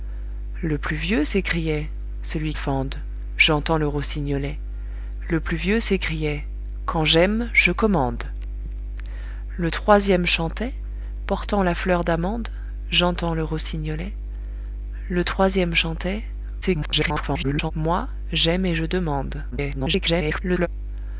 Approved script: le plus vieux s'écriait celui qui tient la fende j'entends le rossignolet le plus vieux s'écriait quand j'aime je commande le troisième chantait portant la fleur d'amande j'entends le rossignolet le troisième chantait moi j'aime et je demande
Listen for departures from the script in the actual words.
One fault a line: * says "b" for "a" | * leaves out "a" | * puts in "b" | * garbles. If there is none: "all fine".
* leaves out "qui tient la"
* garbles
* garbles